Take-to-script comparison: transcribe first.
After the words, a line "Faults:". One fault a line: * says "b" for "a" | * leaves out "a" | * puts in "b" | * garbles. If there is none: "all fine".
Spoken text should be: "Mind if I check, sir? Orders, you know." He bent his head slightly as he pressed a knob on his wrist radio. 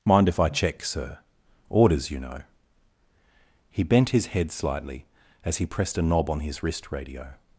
"Mind if I check, sir? Orders, you know." He bent his head slightly as he pressed a knob on his wrist radio.
Faults:
all fine